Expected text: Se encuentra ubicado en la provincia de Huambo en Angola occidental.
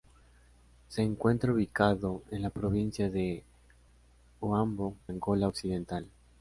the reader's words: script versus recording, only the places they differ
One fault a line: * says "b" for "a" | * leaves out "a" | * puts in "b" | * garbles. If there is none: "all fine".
* leaves out "en"